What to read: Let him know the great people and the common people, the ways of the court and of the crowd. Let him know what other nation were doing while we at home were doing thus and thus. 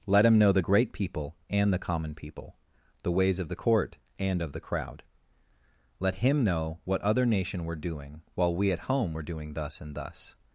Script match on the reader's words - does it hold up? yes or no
yes